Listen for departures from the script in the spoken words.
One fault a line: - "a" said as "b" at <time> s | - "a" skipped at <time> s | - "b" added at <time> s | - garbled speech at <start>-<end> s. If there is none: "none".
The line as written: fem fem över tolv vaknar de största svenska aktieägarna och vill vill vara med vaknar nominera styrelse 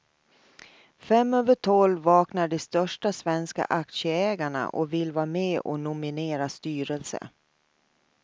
- "fem" skipped at 1.3 s
- "vill" skipped at 5.1 s
- "vaknar" said as "och" at 5.6 s